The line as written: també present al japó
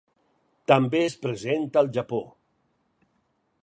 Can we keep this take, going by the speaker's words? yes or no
no